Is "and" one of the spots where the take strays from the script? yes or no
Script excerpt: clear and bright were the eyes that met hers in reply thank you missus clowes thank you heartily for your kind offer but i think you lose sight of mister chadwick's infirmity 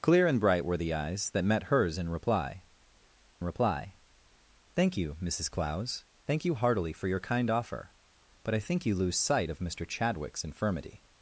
no